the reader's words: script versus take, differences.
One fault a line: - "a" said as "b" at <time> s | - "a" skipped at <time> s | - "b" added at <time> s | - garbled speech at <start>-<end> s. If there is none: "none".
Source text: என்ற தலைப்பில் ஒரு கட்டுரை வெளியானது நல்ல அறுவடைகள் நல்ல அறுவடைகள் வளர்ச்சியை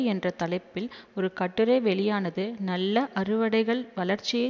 - "நல்ல அறுவடைகள்" skipped at 3.8 s